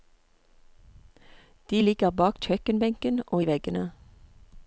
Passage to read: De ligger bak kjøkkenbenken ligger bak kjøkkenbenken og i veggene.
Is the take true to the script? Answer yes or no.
no